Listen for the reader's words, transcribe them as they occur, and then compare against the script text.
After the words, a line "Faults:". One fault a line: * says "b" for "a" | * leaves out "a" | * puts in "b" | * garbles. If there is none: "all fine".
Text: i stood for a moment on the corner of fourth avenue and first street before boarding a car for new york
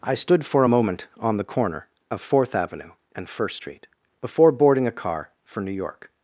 i stood for a moment on the corner of fourth avenue and first street before boarding a car for new york
Faults:
all fine